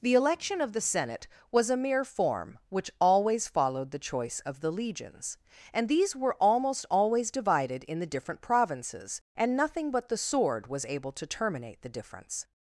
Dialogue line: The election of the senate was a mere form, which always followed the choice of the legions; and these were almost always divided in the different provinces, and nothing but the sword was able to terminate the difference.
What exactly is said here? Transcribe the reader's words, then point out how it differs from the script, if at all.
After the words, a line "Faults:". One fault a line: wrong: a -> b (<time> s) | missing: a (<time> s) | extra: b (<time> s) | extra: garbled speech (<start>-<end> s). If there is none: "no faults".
The election of the senate was a mere form, which always followed the choice of the legions; and these were almost always divided in the different provinces, and nothing but the sword was able to terminate the difference.
Faults:
no faults